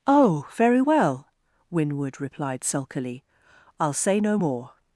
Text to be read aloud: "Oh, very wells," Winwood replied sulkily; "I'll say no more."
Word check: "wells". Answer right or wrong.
wrong